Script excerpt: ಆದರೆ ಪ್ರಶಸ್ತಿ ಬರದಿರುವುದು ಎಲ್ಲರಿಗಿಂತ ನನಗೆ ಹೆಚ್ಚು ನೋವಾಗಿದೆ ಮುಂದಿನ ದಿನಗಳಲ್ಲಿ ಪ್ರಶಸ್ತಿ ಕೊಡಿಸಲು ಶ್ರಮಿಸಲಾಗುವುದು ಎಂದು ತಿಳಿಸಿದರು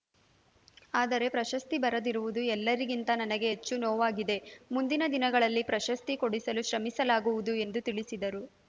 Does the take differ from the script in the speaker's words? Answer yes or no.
no